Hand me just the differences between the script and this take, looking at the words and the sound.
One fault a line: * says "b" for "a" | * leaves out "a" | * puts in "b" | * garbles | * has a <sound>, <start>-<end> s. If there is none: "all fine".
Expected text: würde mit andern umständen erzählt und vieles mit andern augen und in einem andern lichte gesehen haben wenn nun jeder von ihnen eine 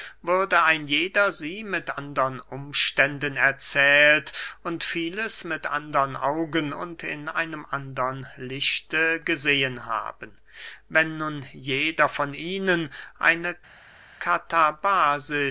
* puts in "ein jeder sie"